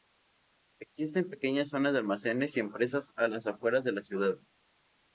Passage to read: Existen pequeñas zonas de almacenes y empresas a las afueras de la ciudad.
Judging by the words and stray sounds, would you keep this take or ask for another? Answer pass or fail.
pass